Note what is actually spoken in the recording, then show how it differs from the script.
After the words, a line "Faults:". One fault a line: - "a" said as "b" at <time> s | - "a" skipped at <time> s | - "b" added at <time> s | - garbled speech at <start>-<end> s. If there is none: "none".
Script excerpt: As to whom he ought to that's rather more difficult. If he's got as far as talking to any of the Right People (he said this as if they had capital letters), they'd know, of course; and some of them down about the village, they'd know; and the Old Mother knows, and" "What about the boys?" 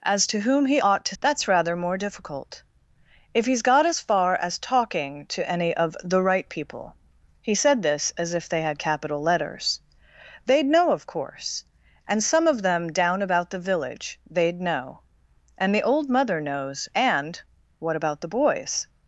As to whom he ought to that's rather more difficult. If he's got as far as talking to any of the Right People (he said this as if they had capital letters), they'd know, of course; and some of them down about the village, they'd know; and the Old Mother knows, and" "What about the boys?"
Faults:
none